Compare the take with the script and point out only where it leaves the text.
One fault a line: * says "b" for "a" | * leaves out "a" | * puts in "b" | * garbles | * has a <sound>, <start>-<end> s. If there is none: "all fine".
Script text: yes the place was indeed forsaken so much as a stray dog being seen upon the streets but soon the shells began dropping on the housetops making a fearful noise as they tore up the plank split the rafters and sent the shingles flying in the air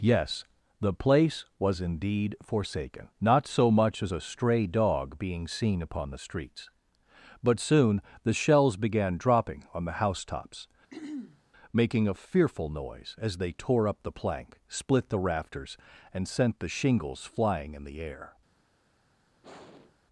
* puts in "not"
* has a throat clearing, 10.9-11.4 s
* has a sigh, 19.4-20.0 s